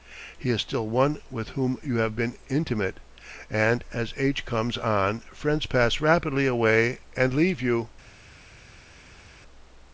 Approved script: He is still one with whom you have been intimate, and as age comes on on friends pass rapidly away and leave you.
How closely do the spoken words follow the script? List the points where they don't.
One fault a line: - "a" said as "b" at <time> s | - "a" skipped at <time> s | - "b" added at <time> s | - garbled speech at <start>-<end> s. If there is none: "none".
- "on" skipped at 5.2 s